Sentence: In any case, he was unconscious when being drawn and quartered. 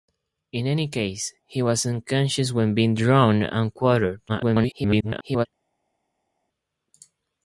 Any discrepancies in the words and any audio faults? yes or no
yes